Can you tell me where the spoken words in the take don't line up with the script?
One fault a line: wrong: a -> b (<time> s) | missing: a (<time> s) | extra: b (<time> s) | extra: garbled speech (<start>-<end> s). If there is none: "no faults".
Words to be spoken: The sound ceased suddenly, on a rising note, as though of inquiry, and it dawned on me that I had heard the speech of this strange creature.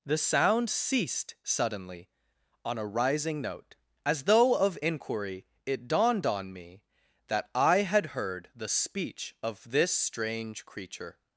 missing: and (5.4 s)